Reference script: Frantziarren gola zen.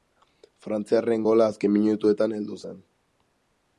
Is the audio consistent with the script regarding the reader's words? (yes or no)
no